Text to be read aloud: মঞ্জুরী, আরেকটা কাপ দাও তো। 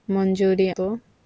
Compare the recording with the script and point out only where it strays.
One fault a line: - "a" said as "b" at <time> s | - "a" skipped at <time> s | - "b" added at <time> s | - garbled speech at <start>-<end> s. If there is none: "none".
- "আরেকটা কাপ দাও" skipped at 0.7 s